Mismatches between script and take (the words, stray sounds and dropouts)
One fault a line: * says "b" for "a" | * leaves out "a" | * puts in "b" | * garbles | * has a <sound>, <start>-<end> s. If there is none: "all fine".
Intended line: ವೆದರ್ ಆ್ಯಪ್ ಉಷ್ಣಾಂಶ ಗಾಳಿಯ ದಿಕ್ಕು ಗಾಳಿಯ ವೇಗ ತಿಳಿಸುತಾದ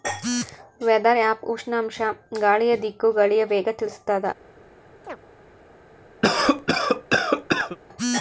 * has a chirp, 5.0-5.2 s
* has a cough, 6.2-7.8 s